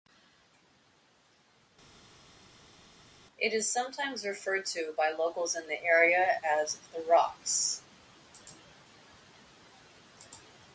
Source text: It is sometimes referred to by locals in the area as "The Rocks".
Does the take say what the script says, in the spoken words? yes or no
yes